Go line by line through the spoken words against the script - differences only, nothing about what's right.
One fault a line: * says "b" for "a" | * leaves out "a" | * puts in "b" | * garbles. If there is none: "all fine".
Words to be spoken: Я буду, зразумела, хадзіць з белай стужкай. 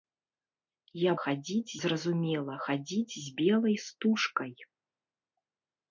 * says "хадзіць" for "буду"